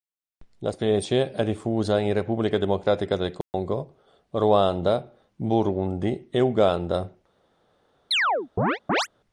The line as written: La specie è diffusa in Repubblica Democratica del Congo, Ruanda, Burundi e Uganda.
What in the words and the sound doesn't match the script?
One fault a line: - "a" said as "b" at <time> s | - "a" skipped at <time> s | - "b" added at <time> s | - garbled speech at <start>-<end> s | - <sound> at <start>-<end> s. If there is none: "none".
- dropout at 3.4-3.5 s
- chirp at 8.1-9.1 s